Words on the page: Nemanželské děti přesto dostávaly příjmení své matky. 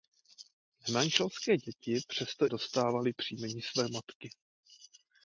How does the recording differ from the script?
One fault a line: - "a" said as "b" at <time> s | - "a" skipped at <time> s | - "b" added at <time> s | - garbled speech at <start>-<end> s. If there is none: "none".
none